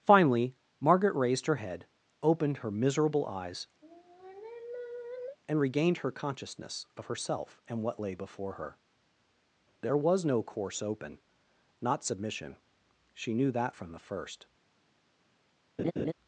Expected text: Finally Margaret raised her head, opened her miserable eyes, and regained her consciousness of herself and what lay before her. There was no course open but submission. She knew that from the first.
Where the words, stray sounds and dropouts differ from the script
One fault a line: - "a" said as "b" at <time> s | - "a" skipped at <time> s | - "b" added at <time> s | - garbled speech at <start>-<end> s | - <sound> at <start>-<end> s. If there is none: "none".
- sigh at 3.8-5.4 s
- "but" said as "not" at 11.8 s
- laugh at 15.8-16.1 s